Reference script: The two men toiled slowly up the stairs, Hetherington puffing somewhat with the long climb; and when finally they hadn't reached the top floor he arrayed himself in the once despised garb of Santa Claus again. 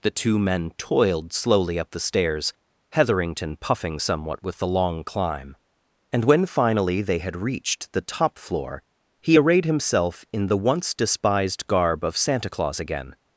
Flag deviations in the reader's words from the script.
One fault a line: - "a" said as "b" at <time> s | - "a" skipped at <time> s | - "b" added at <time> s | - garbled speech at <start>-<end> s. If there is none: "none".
- "hadn't" said as "had" at 7.2 s